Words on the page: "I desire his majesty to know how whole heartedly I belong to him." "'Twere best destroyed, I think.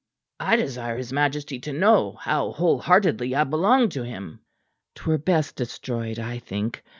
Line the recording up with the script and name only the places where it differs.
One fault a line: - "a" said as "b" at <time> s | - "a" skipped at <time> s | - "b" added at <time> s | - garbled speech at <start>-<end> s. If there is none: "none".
none